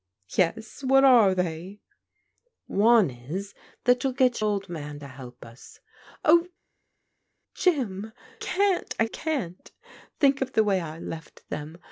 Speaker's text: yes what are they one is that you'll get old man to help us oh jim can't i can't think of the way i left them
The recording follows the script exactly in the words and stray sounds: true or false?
true